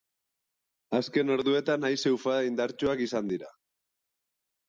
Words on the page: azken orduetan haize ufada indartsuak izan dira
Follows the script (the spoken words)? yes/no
yes